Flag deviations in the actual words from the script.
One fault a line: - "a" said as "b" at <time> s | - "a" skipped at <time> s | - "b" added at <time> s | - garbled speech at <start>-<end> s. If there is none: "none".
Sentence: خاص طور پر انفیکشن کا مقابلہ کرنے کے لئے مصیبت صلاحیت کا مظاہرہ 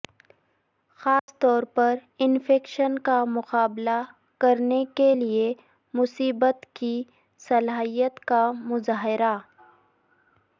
- "کی" added at 6.7 s